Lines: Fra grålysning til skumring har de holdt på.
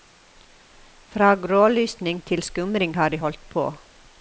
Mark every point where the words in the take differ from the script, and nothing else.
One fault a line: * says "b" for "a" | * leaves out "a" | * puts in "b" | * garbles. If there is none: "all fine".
all fine